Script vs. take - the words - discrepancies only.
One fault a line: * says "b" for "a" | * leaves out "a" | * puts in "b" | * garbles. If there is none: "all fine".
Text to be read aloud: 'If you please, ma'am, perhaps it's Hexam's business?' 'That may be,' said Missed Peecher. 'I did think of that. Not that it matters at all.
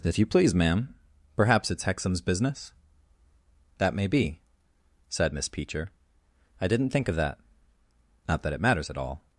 * says "Miss" for "Missed"
* says "didn't" for "did"